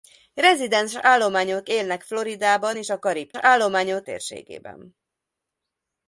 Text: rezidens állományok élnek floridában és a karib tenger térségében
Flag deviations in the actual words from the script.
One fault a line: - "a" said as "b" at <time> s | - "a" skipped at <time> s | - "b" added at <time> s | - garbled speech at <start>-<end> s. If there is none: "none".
- "tenger" said as "állományok" at 3.3 s